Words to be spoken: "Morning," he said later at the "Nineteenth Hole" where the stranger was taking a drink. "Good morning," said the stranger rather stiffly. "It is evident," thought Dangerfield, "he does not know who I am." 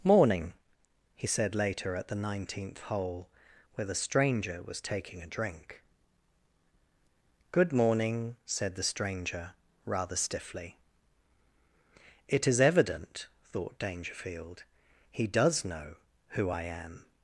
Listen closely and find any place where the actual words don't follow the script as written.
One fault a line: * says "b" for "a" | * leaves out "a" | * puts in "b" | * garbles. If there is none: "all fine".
* leaves out "not"